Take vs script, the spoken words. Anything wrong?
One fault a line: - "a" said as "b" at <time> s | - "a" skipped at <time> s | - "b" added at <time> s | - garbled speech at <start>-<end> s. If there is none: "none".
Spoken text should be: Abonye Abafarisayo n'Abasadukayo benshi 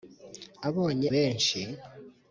- "Abafarisayo n'Abasadukayo" skipped at 1.1 s